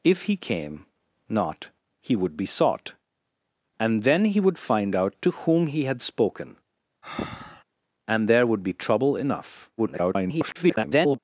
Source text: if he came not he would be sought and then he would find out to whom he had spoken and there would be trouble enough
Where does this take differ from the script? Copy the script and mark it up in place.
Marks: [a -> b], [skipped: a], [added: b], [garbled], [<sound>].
if he came not he would be sought and then he would find out to whom he had spoken [breath] and there would be trouble enough [garbled]